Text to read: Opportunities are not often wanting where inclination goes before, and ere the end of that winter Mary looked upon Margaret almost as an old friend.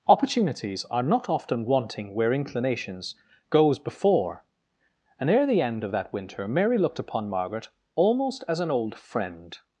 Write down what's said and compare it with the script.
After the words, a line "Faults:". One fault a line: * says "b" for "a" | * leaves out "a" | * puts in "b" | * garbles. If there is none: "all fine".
Opportunities are not often wanting where inclinations goes before, and ere the end of that winter Mary looked upon Margaret almost as an old friend.
Faults:
* says "inclinations" for "inclination"